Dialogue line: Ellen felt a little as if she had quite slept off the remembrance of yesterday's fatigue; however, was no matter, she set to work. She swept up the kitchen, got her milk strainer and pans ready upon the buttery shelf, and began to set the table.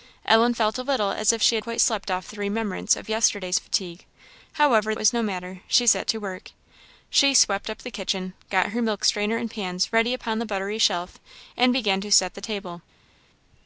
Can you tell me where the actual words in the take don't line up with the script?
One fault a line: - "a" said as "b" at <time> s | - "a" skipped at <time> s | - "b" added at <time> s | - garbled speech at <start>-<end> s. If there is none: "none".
none